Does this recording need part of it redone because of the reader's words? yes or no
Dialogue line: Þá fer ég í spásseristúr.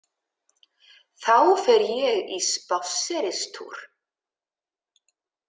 no